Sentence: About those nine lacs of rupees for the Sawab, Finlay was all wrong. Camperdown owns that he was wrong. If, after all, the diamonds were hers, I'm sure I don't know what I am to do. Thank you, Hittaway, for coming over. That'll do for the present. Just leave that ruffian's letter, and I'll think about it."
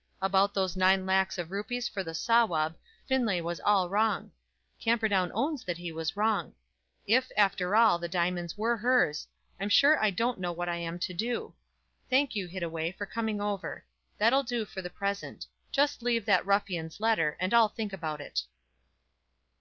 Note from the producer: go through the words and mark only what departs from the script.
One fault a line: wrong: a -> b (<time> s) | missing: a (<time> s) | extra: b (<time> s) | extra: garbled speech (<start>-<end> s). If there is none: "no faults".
no faults